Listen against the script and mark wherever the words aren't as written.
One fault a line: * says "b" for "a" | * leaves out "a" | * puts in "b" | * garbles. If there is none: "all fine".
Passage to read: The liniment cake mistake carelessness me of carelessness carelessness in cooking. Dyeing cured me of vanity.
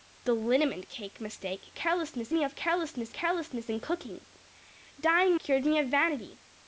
all fine